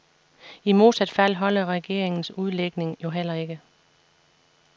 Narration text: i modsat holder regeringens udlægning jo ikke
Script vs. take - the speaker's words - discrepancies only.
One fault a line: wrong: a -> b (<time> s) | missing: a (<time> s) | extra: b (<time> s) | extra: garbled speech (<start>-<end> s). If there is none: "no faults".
extra: fald (1.1 s)
extra: heller (3.1 s)